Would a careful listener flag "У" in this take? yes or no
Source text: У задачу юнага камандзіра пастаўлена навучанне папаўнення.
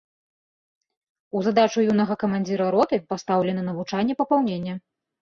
no